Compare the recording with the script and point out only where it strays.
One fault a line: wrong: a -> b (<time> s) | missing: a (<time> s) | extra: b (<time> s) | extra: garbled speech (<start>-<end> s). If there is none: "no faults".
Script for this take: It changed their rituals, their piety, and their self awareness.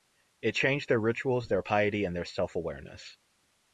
no faults